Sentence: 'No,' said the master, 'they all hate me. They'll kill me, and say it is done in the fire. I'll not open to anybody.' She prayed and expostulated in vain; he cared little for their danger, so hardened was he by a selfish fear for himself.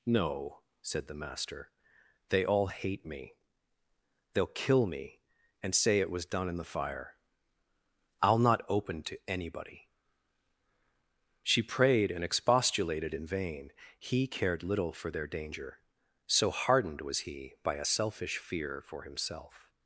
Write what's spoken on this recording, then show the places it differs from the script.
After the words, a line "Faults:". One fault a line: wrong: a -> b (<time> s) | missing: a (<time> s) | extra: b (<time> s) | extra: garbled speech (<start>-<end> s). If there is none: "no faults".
'No,' said the master, 'they all hate me. They'll kill me, and say it was done in the fire. I'll not open to anybody.' She prayed and expostulated in vain; he cared little for their danger, so hardened was he by a selfish fear for himself.
Faults:
wrong: is -> was (6.1 s)